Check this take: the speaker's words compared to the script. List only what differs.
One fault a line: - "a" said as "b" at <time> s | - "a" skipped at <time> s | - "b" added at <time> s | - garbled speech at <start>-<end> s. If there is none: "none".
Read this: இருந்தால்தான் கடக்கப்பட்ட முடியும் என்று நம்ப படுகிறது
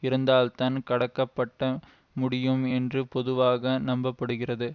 - "பொதுவாக" added at 3.1 s